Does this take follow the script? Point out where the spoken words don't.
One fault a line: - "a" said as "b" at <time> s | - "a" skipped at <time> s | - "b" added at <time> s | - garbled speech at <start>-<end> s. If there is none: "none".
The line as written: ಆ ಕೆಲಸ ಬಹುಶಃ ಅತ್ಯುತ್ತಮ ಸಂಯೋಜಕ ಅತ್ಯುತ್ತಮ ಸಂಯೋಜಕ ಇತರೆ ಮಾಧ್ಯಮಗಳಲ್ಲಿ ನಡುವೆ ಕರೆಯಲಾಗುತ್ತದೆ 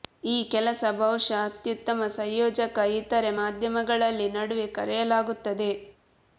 - "ಆ" said as "ಈ" at 0.2 s
- "ಅತ್ಯುತ್ತಮ ಸಂಯೋಜಕ" skipped at 2.8 s